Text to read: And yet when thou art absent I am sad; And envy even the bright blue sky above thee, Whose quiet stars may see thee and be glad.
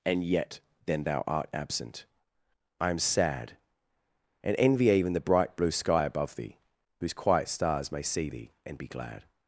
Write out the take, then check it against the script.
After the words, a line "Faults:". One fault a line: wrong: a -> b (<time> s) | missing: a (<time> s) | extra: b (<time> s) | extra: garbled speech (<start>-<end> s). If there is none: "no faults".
And yet then thou art absent I am sad; And envy even the bright blue sky above thee, Whose quiet stars may see thee and be glad.
Faults:
wrong: when -> then (0.8 s)